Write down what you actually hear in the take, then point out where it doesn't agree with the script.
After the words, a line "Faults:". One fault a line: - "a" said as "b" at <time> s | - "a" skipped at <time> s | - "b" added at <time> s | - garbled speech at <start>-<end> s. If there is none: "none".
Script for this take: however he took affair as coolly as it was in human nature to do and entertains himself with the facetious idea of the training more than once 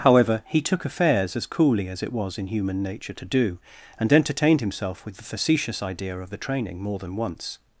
however he took affairs as coolly as it was in human nature to do and entertained himself with the facetious idea of the training more than once
Faults:
- "affair" said as "affairs" at 0.8 s
- "entertains" said as "entertained" at 4.1 s